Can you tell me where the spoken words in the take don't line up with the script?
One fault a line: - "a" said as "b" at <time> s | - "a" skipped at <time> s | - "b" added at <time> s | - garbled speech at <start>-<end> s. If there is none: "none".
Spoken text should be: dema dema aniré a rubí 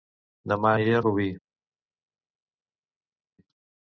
- "dema" skipped at 0.7 s